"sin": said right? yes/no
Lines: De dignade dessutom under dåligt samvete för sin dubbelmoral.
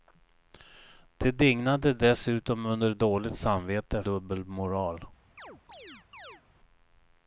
no